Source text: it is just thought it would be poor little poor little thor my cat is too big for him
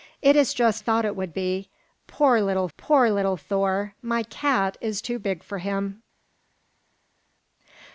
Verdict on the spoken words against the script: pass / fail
pass